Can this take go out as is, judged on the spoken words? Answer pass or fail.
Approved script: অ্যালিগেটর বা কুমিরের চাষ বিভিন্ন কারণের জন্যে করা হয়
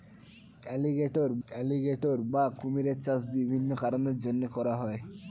fail